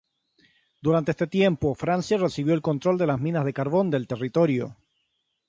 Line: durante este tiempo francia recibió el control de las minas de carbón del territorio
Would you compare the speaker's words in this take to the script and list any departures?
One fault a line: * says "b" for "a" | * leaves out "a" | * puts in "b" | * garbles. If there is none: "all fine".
all fine